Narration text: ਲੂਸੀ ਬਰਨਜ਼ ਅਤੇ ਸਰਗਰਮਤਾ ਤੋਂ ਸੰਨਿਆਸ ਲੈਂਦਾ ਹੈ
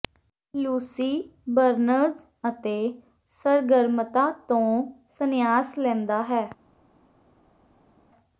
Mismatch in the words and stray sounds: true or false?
false